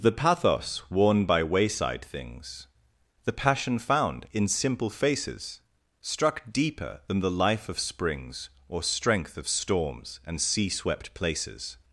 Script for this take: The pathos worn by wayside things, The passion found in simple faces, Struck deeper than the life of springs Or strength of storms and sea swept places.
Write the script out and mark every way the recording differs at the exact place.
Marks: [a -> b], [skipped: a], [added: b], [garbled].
The pathos worn by wayside things, The passion found in simple faces, Struck deeper than the life of springs Or strength of storms and sea swept places.